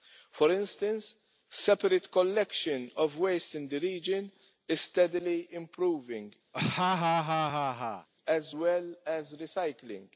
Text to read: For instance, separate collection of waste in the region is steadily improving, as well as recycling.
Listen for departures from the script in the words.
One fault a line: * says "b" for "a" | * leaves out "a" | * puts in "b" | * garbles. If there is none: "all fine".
all fine